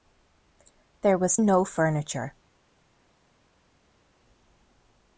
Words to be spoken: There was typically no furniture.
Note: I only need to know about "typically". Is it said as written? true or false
false